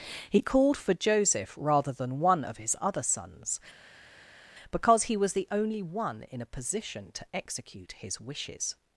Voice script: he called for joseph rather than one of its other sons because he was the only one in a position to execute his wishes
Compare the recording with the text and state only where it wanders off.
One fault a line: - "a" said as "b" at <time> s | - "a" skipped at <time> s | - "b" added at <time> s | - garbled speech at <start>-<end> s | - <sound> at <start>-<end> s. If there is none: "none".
- "its" said as "his" at 2.6 s